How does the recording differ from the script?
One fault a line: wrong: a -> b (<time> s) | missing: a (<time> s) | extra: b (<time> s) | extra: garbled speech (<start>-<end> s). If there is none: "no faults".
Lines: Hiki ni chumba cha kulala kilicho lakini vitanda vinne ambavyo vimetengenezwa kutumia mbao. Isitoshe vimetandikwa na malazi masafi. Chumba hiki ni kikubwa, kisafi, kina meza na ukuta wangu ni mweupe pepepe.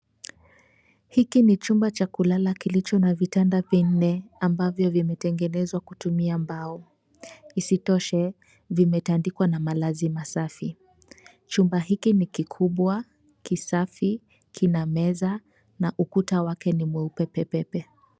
wrong: lakini -> na (3.0 s)
wrong: wangu -> wake (16.4 s)